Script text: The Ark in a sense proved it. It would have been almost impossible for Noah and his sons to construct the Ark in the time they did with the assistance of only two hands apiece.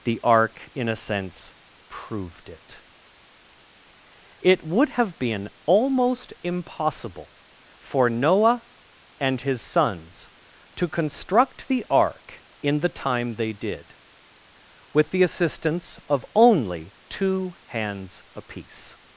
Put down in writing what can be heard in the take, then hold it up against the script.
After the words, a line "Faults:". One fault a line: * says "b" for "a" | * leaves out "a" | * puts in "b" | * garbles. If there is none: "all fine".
The Ark in a sense proved it. It would have been almost impossible for Noah and his sons to construct the Ark in the time they did with the assistance of only two hands apiece.
Faults:
all fine